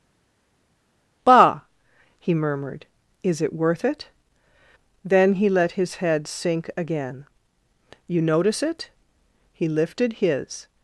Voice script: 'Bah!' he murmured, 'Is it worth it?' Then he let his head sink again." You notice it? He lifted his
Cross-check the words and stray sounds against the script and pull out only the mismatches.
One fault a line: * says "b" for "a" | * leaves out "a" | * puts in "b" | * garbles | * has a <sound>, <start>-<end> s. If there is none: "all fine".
all fine